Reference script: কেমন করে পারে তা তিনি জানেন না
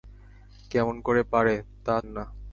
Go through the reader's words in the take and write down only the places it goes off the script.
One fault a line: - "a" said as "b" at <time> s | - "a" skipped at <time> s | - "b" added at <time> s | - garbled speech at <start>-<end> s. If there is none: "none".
- "তিনি জানেন" skipped at 1.9 s